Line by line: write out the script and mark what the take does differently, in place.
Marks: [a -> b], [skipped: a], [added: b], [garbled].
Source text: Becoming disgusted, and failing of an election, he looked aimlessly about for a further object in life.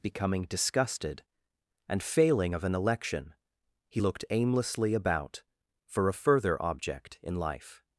Becoming disgusted, and failing of an election, he looked aimlessly about for a further object in life.